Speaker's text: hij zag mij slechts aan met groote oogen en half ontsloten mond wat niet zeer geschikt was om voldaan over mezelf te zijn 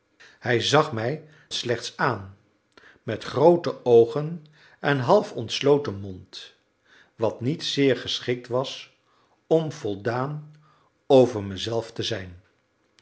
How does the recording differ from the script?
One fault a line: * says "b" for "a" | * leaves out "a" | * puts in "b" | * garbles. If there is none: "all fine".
all fine